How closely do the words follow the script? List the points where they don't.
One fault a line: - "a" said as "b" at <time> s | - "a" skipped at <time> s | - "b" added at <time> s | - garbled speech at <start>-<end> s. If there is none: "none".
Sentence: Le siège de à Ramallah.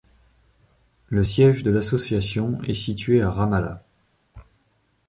- "l'association est situé" added at 1.7 s